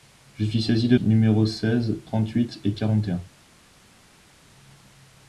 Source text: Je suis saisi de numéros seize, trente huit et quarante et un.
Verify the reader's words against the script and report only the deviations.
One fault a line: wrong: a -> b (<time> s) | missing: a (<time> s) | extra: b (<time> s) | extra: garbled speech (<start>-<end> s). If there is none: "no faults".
no faults